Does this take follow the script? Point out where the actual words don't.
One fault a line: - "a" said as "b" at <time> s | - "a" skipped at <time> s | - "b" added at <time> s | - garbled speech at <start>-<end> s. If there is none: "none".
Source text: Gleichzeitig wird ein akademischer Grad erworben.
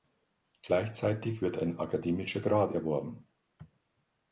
none